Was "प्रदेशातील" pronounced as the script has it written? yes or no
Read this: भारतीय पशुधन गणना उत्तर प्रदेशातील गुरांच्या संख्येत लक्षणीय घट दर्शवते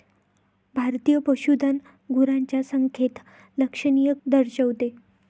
no